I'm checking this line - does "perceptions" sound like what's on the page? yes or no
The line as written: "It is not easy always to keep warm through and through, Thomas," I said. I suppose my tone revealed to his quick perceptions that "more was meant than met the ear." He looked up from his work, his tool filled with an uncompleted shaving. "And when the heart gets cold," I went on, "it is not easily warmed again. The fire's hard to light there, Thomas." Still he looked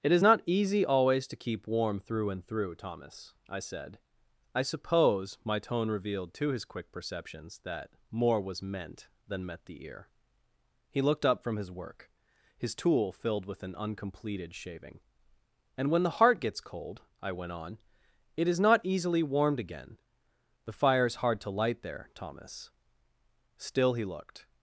yes